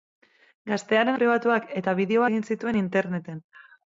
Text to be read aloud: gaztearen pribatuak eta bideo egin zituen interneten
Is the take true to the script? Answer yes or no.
yes